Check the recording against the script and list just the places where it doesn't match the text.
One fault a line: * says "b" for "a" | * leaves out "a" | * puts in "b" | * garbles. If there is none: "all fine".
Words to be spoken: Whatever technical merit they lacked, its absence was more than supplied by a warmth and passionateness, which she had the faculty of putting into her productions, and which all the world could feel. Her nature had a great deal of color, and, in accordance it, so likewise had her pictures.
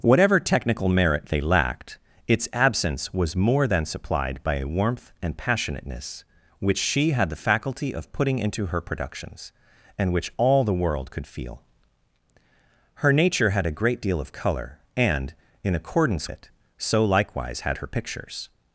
all fine